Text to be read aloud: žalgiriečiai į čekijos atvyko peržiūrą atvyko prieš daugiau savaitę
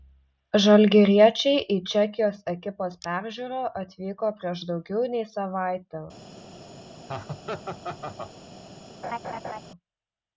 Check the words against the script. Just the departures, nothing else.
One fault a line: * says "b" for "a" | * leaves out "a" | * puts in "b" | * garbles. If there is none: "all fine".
* says "ekipos" for "atvyko"
* puts in "nei"